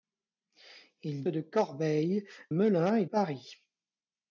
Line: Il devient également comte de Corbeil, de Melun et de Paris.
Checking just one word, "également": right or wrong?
wrong